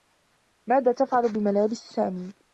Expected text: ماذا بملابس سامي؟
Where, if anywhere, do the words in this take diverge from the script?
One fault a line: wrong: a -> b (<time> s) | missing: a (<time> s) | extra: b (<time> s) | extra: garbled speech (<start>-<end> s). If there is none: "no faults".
extra: تفعل (0.9 s)